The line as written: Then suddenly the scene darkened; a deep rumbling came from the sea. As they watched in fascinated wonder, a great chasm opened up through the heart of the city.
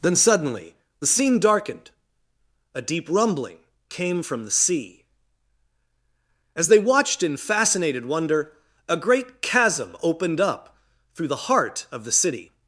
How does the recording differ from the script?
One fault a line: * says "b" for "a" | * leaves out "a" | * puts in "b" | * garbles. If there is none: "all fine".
all fine